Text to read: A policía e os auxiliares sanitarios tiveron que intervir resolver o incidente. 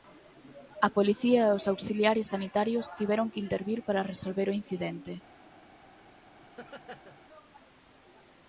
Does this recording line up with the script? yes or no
no